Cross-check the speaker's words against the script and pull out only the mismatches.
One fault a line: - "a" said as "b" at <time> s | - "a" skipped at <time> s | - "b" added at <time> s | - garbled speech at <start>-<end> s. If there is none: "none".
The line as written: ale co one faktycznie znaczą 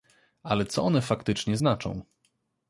none